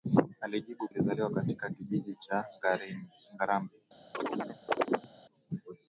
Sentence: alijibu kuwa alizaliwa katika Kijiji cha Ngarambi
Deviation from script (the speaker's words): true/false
true